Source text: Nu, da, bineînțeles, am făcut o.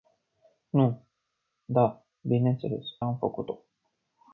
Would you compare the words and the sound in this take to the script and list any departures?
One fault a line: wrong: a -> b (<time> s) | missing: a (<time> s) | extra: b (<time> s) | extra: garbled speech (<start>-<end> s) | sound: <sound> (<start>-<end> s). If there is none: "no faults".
no faults